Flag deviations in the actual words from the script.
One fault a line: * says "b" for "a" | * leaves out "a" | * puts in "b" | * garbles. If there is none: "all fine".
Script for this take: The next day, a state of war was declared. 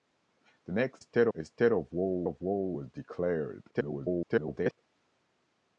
* says "state" for "day"
* puts in "of war"
* garbles